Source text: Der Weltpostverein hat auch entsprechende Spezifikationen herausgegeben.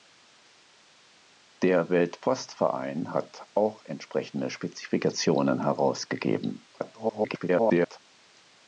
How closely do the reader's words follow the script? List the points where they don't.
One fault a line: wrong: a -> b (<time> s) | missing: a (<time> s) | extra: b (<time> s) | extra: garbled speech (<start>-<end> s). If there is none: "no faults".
extra: garbled speech (6.7-8.0 s)